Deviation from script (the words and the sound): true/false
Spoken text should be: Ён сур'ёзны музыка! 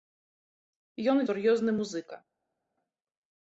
false